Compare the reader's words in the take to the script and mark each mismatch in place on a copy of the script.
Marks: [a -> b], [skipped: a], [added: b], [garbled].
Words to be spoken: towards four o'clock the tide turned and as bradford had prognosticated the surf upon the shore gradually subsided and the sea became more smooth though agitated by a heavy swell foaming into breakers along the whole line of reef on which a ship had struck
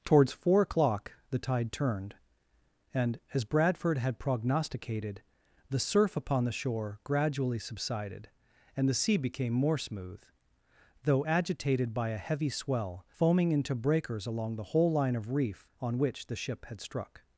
towards four o'clock the tide turned and as bradford had prognosticated the surf upon the shore gradually subsided and the sea became more smooth though agitated by a heavy swell foaming into breakers along the whole line of reef on which [a -> the] ship had struck